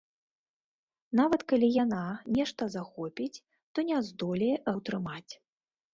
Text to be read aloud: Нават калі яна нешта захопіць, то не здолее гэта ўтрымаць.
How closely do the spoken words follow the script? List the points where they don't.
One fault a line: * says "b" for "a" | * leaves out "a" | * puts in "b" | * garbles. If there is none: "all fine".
* leaves out "гэта"